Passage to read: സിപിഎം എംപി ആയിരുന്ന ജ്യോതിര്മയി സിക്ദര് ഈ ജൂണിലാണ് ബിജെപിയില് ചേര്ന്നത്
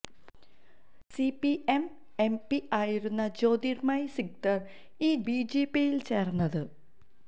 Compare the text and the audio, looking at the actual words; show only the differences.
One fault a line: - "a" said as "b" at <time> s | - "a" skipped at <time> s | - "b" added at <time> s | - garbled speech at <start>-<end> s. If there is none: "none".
- "ജൂണിലാണ്" skipped at 5.2 s